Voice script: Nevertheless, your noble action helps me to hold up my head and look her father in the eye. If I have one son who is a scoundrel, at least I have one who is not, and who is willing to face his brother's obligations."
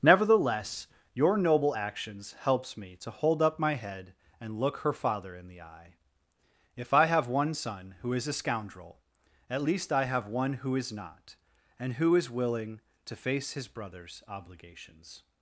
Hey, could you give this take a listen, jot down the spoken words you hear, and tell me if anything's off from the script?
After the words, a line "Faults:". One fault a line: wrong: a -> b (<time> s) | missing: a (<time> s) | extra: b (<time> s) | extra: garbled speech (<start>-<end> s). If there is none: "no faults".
Nevertheless, your noble actions helps me to hold up my head and look her father in the eye. If I have one son who is a scoundrel, at least I have one who is not, and who is willing to face his brother's obligations."
Faults:
wrong: action -> actions (1.7 s)